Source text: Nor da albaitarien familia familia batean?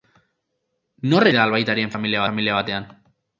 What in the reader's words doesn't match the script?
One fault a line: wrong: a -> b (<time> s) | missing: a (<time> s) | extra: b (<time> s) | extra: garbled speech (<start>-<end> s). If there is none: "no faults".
no faults